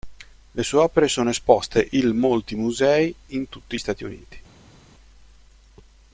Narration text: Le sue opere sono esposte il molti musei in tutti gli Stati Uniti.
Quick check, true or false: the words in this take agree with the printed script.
false